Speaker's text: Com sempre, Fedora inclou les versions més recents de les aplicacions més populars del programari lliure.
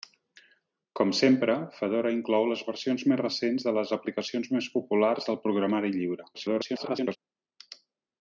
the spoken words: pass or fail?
fail